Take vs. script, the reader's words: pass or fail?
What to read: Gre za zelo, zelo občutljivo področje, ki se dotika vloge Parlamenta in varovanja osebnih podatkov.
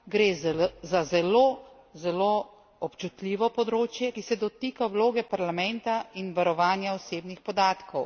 pass